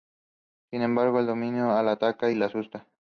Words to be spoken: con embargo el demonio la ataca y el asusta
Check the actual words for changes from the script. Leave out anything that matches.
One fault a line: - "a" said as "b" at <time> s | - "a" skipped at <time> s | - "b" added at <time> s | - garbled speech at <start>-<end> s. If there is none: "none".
- "con" said as "sin" at 0.7 s
- "el" said as "la" at 2.3 s